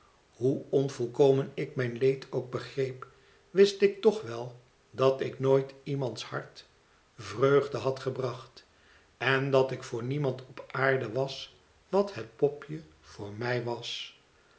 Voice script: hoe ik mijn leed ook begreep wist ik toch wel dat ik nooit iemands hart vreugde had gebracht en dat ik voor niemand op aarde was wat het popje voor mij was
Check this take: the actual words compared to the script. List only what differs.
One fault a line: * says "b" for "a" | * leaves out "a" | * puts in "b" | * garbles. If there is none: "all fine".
* puts in "onvolkomen"